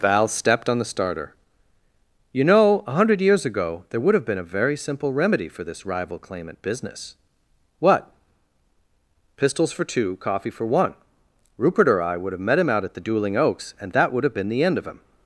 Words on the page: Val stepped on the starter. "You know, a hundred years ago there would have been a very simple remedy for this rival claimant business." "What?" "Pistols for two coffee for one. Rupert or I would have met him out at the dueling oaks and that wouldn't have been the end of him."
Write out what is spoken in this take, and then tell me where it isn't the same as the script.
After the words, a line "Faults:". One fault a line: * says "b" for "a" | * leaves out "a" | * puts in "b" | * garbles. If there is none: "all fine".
Val stepped on the starter. "You know, a hundred years ago there would have been a very simple remedy for this rival claimant business." "What?" "Pistols for two coffee for one. Rupert or I would have met him out at the dueling oaks and that would have been the end of him."
Faults:
* says "would" for "wouldn't"